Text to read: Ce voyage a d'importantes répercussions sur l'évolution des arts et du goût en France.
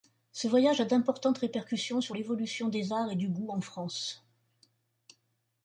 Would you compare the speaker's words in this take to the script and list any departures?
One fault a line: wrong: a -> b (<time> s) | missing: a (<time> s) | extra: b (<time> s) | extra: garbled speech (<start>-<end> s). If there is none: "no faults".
no faults